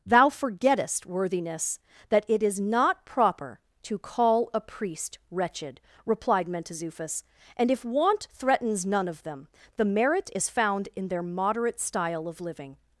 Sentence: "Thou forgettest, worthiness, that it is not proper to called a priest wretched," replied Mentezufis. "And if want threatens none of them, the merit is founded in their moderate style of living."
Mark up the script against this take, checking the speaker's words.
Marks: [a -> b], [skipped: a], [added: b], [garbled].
"Thou forgettest, worthiness, that it is not proper to [called -> call] a priest wretched," replied Mentezufis. "And if want threatens none of them, the merit is [founded -> found] in their moderate style of living."